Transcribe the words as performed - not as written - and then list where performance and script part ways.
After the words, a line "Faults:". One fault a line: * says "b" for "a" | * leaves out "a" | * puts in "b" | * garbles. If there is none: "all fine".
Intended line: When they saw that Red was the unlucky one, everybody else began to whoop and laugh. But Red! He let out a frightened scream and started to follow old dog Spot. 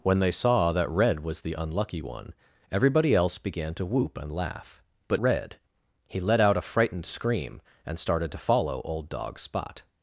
When they saw that Red was the unlucky one, everybody else began to whoop and laugh. But Red! He let out a frightened scream and started to follow old dog Spot.
Faults:
all fine